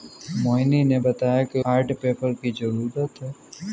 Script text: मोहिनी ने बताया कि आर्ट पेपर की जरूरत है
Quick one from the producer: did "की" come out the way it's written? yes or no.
yes